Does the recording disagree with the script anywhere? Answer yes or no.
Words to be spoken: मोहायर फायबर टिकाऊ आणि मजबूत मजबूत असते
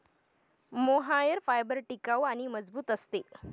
yes